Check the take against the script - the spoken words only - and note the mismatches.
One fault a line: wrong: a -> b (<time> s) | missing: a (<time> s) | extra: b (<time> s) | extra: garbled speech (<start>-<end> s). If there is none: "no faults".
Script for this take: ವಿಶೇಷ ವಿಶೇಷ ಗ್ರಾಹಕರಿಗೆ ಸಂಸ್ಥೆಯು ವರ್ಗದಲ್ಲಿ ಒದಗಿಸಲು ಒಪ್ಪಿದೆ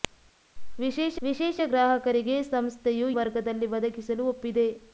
no faults